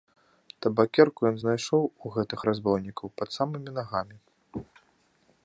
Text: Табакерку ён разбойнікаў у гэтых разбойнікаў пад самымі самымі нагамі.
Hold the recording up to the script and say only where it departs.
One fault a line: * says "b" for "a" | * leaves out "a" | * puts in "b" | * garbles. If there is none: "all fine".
* says "знайшоў" for "разбойнікаў"
* leaves out "самымі"